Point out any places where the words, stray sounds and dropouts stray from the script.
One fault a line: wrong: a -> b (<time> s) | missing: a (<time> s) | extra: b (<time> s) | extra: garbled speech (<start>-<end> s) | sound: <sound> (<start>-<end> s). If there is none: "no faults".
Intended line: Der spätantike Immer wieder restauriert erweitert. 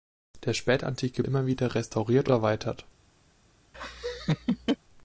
sound: laugh (3.7-4.8 s)